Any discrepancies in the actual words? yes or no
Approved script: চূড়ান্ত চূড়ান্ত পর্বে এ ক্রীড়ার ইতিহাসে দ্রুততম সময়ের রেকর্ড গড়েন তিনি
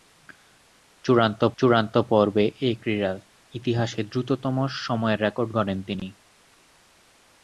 no